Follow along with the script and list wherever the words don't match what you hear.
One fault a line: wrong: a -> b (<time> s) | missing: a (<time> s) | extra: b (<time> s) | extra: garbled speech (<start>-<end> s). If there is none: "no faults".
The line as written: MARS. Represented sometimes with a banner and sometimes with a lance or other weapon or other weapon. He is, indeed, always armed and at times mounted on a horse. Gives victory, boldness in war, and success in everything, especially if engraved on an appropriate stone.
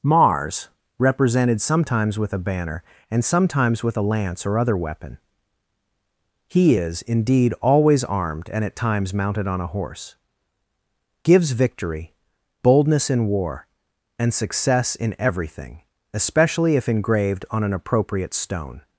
missing: or other weapon (5.2 s)